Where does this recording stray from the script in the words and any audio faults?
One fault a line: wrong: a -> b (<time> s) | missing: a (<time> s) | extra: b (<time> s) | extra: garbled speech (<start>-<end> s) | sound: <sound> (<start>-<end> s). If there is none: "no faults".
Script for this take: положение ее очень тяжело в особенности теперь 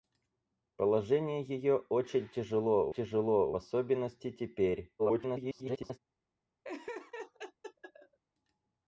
extra: тяжело (2.9 s)
extra: garbled speech (5.0-6.0 s)
sound: laugh (6.6-8.2 s)